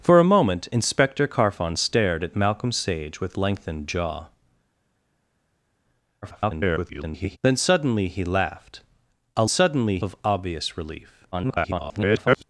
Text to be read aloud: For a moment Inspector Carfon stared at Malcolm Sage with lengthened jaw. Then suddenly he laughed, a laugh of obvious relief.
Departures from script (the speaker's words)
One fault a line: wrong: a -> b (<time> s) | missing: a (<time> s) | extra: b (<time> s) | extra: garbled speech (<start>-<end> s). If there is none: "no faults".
extra: garbled speech (6.2-7.4 s)
wrong: laugh -> suddenly (9.5 s)
extra: garbled speech (11.3-12.4 s)